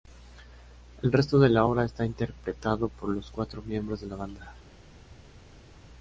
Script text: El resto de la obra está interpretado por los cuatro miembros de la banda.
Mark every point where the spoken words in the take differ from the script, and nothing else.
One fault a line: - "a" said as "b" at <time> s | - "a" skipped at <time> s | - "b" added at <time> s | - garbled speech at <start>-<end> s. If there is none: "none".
none